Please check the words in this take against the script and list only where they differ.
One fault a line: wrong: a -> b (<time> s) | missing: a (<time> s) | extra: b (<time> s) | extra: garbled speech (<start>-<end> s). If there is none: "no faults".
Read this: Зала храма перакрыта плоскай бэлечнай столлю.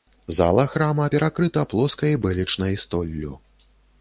no faults